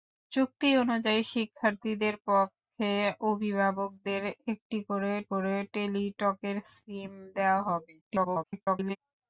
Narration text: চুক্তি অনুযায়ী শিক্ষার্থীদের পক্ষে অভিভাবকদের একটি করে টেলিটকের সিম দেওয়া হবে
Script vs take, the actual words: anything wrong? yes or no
yes